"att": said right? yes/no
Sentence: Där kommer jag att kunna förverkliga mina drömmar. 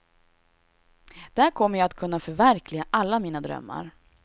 yes